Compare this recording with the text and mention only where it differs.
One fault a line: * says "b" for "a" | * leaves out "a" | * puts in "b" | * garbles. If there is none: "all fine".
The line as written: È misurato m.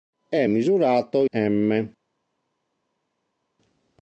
all fine